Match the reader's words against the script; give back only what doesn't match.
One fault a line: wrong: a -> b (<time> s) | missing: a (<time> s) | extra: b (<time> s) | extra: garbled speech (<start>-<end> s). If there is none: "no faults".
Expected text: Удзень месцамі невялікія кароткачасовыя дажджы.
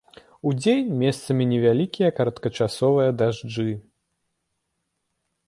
no faults